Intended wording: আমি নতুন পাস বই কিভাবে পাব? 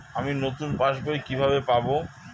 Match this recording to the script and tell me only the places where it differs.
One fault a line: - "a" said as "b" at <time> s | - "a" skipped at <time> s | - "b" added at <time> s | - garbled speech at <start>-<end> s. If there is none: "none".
none